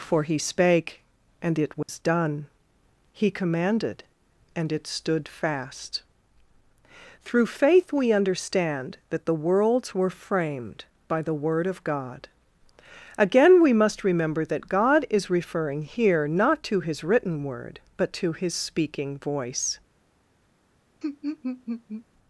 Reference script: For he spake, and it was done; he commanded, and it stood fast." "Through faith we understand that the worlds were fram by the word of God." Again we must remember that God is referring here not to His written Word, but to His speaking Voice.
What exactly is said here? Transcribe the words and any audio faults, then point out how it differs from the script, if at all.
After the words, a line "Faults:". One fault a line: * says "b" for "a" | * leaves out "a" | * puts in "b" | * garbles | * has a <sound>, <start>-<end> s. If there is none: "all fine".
For he spake, and it was done; he commanded, and it stood fast." "Through faith we understand that the worlds were framed by the word of God." Again we must remember that God is referring here not to His written Word, but to His speaking Voice.
Faults:
* has a dropout, 1.8-1.9 s
* says "framed" for "fram"
* has a laugh, 21.0-22.1 s